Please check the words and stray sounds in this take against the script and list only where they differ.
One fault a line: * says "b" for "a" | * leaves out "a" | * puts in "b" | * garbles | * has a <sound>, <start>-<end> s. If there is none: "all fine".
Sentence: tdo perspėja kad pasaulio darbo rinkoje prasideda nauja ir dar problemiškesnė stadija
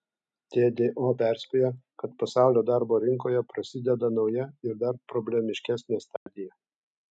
* has a dropout, 6.2-6.3 s